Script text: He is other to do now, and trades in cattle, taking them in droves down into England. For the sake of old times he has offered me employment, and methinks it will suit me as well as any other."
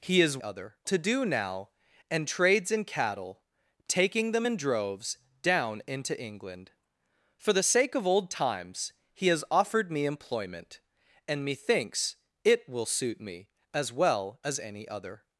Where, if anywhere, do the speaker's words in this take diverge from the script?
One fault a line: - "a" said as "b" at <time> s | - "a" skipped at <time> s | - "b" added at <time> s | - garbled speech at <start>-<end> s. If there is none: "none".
none